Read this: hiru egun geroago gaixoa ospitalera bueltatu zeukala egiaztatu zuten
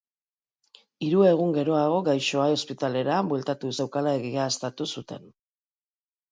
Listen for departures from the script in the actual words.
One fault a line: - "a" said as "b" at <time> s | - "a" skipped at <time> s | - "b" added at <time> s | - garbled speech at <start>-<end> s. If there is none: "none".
none